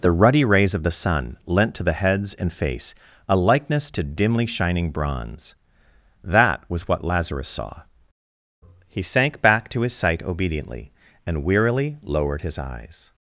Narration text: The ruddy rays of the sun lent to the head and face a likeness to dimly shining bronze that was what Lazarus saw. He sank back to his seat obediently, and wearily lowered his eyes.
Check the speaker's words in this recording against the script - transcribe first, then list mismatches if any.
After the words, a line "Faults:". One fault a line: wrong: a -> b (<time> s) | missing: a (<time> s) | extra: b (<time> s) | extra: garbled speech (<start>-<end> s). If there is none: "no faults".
The ruddy rays of the sun lent to the heads and face a likeness to dimly shining bronze that was what Lazarus saw. He sank back to his sight obediently, and wearily lowered his eyes.
Faults:
wrong: head -> heads (1.9 s)
wrong: seat -> sight (9.9 s)